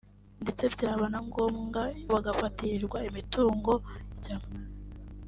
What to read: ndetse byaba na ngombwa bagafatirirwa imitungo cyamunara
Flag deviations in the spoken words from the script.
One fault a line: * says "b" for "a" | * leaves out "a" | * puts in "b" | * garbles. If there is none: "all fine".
all fine